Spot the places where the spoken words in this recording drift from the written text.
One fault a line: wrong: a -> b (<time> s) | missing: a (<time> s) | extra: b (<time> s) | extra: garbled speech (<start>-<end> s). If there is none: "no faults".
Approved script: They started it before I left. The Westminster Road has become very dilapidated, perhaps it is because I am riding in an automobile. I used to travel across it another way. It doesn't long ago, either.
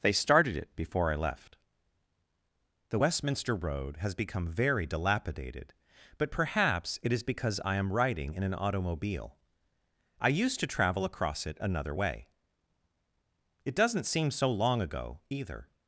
extra: but (6.2 s)
extra: seem so (14.1 s)